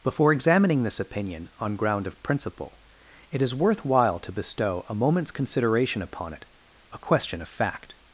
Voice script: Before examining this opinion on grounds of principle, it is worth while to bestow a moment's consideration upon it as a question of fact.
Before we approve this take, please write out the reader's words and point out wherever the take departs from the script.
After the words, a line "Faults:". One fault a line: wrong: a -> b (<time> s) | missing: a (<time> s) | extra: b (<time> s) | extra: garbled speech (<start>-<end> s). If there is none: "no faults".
Before examining this opinion on ground of principle, it is worth while to bestow a moment's consideration upon it a question of fact.
Faults:
wrong: grounds -> ground (1.8 s)
missing: as (6.4 s)